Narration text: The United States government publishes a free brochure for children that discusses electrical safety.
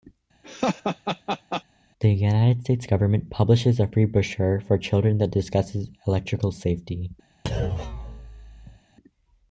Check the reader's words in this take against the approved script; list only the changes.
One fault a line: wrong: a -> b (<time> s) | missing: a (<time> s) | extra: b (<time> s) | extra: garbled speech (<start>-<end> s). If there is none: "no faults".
no faults